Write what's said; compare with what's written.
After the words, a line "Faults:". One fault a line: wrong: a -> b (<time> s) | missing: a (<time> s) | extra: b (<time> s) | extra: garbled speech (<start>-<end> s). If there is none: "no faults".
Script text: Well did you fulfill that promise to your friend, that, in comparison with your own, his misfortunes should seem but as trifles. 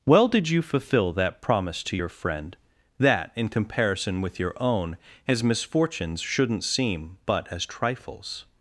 Well did you fulfill that promise to your friend, that, in comparison with your own, his misfortunes shouldn't seem but as trifles.
Faults:
wrong: should -> shouldn't (6.2 s)